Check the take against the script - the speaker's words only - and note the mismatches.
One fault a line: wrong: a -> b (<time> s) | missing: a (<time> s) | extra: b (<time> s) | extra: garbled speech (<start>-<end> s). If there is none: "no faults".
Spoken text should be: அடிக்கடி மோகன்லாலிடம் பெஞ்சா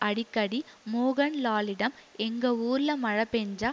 extra: எங்க ஊர்ல மழை (2.2 s)